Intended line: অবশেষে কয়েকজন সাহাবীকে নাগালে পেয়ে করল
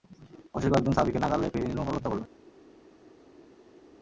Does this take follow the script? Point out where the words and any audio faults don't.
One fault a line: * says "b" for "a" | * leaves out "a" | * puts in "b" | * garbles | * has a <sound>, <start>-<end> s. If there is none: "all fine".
* puts in "নির্মমভাবে হত্যা"